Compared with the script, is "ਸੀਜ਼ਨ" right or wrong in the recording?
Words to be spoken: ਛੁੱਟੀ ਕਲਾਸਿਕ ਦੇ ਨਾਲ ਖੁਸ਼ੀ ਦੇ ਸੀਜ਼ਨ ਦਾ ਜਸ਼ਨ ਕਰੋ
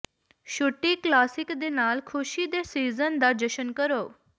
right